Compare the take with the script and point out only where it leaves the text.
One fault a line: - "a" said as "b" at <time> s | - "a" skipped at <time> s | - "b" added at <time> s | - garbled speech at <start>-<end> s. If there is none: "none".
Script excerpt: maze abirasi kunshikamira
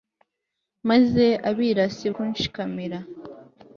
none